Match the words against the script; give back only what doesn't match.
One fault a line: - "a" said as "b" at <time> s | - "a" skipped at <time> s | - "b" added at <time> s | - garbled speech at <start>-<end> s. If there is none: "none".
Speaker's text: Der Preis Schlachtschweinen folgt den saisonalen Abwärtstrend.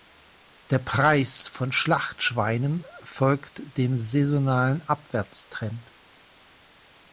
- "von" added at 1.5 s
- "den" said as "dem" at 3.8 s